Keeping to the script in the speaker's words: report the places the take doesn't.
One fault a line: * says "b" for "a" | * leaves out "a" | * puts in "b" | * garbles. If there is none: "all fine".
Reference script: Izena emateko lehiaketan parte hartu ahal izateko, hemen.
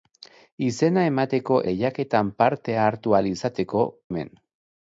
all fine